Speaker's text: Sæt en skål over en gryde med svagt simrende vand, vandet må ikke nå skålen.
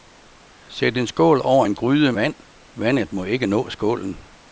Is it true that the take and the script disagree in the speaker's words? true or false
true